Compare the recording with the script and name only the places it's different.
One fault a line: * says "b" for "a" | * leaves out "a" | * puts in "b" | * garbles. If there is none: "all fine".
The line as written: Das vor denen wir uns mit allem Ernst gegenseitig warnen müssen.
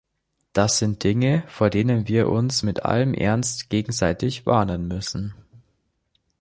* puts in "sind Dinge"